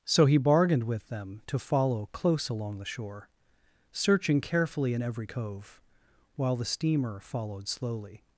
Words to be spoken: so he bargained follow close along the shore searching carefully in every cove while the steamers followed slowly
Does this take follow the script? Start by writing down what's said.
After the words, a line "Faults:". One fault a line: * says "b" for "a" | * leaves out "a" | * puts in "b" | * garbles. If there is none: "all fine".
so he bargained with them to follow close along the shore searching carefully in every cove while the steamer followed slowly
Faults:
* puts in "with them to"
* says "steamer" for "steamers"